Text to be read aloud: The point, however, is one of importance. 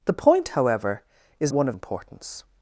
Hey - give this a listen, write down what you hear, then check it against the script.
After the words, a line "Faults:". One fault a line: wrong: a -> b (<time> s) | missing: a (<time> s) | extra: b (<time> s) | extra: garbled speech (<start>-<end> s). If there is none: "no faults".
The point, however, is one of importance.
Faults:
no faults